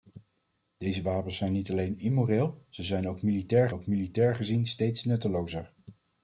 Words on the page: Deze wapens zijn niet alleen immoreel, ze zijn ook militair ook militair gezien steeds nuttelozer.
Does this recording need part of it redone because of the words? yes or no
no